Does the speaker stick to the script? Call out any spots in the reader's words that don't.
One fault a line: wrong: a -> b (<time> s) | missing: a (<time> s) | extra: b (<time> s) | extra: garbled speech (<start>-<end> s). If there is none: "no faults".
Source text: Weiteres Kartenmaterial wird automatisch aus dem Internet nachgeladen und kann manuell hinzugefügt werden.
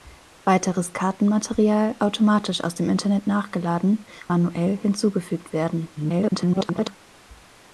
missing: wird (2.0 s)
missing: und kann (4.0 s)
extra: garbled speech (6.0-7.0 s)